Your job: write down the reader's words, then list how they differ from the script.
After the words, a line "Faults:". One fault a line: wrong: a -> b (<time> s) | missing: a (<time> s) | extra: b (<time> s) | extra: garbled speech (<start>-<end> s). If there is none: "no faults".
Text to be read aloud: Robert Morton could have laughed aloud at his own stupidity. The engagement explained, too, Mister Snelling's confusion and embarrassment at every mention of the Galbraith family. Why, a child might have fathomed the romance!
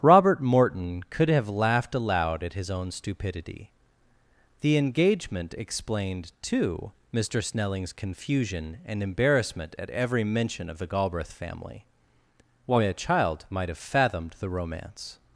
Robert Morton could have laughed aloud at his own stupidity. The engagement explained, too, Mister Snelling's confusion and embarrassment at every mention of the Galbraith family. Why, a child might have fathomed the romance!
Faults:
no faults